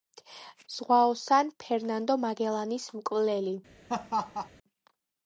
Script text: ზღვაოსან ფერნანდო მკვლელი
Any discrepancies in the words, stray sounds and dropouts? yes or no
yes